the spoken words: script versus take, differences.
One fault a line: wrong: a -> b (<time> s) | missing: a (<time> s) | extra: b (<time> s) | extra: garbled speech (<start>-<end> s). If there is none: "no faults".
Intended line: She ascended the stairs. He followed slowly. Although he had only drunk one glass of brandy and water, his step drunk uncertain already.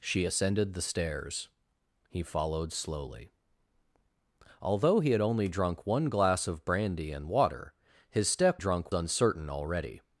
no faults